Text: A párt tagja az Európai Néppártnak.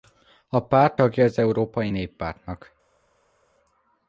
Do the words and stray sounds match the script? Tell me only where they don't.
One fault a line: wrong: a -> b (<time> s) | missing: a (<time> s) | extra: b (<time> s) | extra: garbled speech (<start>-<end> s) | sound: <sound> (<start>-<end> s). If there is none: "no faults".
no faults